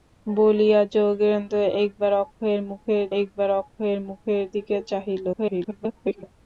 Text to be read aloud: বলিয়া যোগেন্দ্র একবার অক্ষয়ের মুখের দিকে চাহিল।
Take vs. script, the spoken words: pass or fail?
fail